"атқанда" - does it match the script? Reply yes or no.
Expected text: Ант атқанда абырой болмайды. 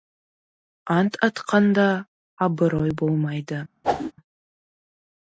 yes